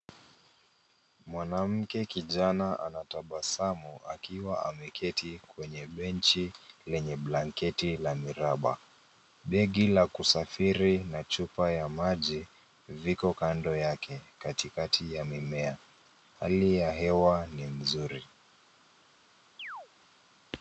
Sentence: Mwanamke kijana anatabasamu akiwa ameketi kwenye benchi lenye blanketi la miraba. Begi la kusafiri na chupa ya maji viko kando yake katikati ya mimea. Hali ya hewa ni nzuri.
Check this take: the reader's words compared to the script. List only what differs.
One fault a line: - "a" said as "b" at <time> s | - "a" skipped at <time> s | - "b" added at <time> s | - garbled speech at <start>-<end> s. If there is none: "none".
none